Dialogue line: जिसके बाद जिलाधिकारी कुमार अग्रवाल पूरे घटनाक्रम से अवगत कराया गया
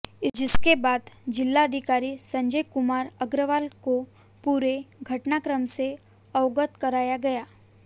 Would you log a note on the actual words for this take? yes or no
yes